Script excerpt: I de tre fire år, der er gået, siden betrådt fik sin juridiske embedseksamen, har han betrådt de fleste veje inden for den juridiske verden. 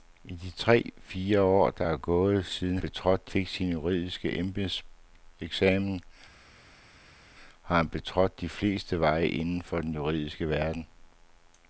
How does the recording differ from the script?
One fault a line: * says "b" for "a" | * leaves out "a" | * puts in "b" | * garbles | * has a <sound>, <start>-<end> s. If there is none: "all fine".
all fine